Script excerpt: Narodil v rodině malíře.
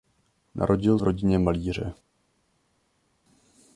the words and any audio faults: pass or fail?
pass